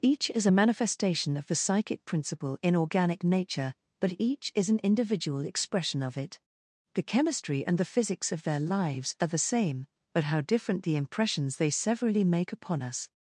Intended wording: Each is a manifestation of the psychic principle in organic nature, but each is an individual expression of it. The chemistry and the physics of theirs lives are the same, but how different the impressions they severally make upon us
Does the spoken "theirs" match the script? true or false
false